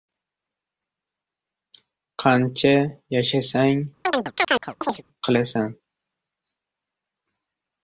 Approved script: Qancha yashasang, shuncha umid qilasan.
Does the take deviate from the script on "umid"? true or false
true